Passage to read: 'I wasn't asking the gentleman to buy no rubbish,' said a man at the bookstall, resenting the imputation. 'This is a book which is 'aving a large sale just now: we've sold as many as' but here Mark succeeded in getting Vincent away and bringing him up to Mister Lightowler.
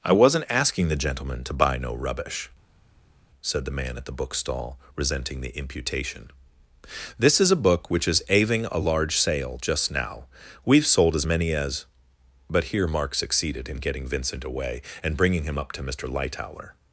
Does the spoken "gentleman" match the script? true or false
true